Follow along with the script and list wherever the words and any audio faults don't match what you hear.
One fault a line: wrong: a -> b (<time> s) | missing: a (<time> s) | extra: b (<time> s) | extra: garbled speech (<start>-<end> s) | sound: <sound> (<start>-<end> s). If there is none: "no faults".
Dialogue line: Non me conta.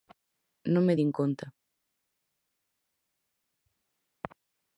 extra: din (1.0 s)